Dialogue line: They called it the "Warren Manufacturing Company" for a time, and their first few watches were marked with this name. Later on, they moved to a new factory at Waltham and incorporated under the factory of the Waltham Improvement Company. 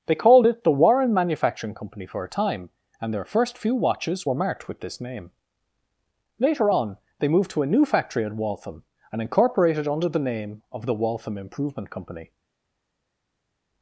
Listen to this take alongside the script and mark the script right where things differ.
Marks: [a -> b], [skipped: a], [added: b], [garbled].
They called it the "Warren Manufacturing Company" for a time, and their first few watches were marked with this name. Later on, they moved to a new factory at Waltham and incorporated under the [factory -> name] of the Waltham Improvement Company.